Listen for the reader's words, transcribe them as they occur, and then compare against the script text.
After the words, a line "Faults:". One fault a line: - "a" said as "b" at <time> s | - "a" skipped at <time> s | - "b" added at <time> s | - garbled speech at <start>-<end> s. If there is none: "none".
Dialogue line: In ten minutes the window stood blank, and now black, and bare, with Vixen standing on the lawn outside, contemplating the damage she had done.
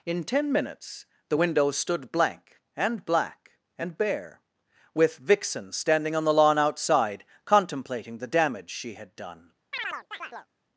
In ten minutes the window stood blank, and black, and bare, with Vixen standing on the lawn outside, contemplating the damage she had done.
Faults:
- "now" skipped at 3.0 s